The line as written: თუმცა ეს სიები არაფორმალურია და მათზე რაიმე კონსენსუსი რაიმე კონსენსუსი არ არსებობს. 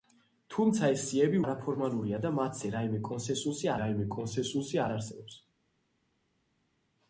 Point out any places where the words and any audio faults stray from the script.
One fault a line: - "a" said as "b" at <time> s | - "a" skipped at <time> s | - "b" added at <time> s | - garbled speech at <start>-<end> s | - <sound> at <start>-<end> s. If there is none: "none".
none